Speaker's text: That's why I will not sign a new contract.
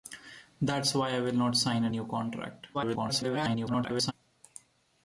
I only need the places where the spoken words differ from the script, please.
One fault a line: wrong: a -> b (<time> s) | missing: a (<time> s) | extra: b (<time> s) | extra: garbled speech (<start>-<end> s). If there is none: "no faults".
extra: garbled speech (2.7-4.1 s)